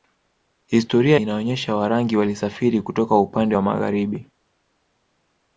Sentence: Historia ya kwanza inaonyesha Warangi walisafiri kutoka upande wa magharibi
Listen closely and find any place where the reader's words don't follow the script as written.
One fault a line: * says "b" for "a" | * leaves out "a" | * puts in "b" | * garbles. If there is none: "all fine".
* leaves out "ya kwanza"